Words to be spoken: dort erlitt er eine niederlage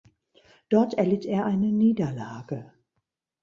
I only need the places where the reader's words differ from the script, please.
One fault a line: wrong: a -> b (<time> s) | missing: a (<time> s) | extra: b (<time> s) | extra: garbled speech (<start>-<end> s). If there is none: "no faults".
no faults